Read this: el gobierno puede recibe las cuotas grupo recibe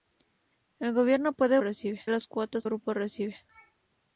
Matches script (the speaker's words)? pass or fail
pass